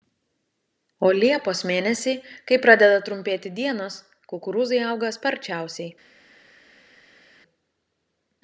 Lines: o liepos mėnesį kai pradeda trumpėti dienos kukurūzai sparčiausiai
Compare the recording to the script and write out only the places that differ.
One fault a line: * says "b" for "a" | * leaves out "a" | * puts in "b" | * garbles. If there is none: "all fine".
* puts in "auga"